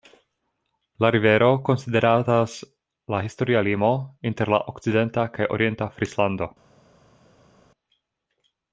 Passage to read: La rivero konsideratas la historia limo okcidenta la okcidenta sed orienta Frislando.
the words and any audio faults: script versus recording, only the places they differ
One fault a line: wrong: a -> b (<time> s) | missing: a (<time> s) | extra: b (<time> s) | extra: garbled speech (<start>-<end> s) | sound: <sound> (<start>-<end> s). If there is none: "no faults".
wrong: okcidenta -> inter (4.3 s)
wrong: sed -> kaj (5.4 s)